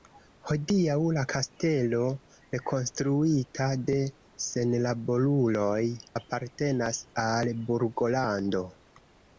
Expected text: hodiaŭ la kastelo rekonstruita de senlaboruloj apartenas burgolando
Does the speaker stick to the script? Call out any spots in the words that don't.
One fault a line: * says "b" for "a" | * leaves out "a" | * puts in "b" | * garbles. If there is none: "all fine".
* puts in "al"